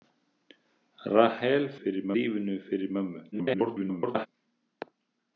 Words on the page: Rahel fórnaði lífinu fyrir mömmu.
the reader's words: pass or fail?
fail